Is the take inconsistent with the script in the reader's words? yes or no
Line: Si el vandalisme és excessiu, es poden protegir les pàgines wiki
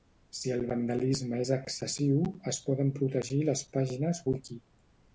no